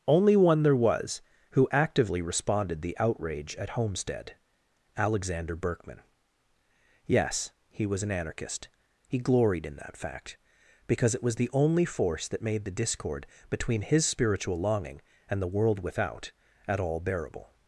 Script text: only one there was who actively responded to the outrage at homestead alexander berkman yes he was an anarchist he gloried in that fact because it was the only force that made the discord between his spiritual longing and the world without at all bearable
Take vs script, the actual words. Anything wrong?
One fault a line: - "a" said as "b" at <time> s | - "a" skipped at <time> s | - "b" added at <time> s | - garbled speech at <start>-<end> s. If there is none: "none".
- "to" skipped at 2.8 s